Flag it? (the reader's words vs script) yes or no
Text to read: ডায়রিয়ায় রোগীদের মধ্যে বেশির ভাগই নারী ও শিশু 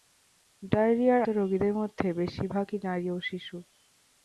no